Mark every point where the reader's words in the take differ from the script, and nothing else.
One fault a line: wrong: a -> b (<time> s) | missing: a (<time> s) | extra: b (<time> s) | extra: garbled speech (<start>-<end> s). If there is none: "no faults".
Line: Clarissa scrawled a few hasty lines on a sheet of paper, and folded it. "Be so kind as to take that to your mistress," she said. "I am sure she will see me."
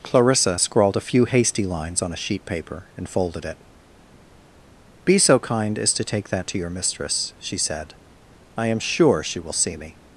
missing: of (2.4 s)